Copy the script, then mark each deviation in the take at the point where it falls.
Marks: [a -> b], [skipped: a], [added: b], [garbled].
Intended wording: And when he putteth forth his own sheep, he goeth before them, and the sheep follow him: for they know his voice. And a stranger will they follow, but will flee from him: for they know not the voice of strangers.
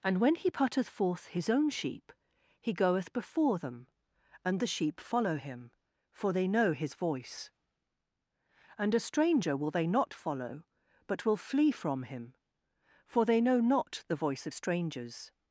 And when he putteth forth his own sheep, he goeth before them, and the sheep follow him: for they know his voice. And a stranger will they [added: not] follow, but will flee from him: for they know not the voice of strangers.